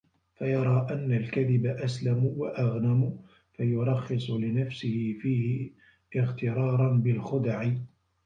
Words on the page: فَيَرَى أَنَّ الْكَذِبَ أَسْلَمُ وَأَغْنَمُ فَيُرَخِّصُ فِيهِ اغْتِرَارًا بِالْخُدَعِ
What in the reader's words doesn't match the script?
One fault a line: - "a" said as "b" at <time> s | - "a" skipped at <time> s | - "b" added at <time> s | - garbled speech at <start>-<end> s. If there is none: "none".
- "لِنَفْسِهِ" added at 4.3 s